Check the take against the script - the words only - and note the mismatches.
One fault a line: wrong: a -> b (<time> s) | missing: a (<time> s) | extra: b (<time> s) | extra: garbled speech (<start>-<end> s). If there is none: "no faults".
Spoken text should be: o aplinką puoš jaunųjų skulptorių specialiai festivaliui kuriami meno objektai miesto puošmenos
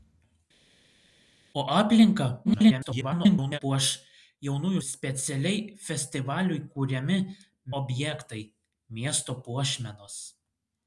extra: garbled speech (2.4-3.6 s)
missing: skulptorių (4.8 s)
missing: meno (7.2 s)